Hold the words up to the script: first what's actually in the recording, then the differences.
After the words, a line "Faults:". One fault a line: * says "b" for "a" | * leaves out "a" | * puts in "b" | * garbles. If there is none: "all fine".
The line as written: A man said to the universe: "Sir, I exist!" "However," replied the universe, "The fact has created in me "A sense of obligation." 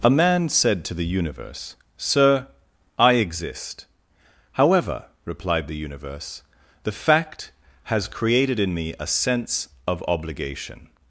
A man said to the universe: "Sir, I exist!" "However," replied the universe, "The fact has created in me "A sense of obligation."
Faults:
all fine